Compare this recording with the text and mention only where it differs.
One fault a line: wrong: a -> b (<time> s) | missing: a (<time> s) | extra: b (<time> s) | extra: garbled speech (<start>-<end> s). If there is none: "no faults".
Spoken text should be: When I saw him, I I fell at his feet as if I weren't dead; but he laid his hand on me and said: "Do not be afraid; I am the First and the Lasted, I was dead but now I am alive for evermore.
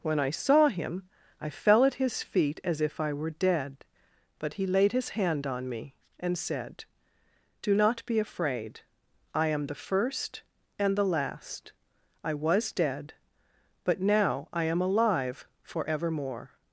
missing: I (1.5 s)
wrong: weren't -> were (3.1 s)
wrong: Lasted -> Last (11.1 s)